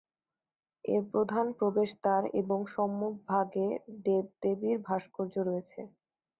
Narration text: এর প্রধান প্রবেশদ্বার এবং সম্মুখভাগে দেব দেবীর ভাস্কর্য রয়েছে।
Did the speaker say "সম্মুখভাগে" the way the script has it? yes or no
yes